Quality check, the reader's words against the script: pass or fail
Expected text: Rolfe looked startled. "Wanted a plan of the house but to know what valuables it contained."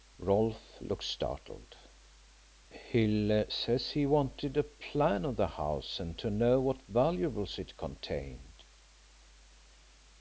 fail